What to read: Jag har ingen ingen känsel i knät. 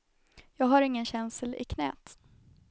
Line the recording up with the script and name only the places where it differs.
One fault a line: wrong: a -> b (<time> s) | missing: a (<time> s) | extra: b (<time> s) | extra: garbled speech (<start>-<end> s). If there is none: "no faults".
missing: ingen (1.1 s)